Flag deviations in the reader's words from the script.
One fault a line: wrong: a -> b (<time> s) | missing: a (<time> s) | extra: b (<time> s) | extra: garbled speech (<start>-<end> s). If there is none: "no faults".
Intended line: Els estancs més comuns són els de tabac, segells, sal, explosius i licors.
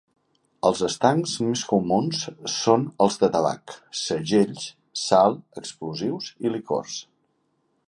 no faults